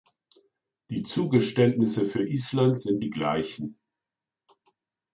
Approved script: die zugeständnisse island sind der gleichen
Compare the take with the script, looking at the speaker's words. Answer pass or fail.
fail